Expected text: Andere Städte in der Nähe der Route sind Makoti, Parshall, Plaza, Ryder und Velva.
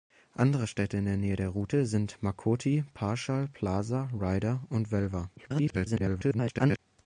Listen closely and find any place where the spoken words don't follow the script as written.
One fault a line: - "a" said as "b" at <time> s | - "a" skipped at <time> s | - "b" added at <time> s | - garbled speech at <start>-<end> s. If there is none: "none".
- garbled speech at 5.4-6.8 s